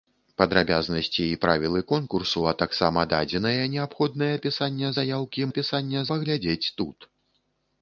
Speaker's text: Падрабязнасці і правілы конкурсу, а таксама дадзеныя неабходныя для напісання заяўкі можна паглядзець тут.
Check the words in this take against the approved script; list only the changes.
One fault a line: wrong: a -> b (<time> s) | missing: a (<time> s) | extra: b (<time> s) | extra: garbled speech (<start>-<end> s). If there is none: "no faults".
missing: для (4.4 s)
wrong: можна -> напісання (5.5 s)